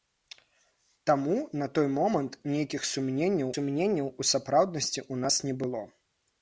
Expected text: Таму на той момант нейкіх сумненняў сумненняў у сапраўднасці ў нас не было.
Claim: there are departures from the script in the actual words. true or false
false